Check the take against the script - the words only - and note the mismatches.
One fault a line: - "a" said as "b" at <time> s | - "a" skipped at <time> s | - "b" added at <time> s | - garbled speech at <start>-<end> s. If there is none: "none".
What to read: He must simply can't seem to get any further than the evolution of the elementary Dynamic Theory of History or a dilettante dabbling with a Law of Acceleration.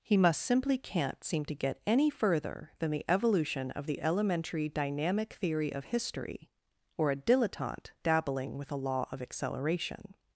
none